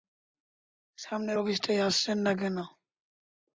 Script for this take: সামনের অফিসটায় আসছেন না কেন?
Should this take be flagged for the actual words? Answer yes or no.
no